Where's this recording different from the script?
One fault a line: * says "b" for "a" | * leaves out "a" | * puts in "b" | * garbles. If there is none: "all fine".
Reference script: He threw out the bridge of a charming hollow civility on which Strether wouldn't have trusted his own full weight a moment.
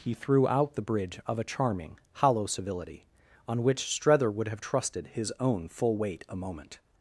* says "would" for "wouldn't"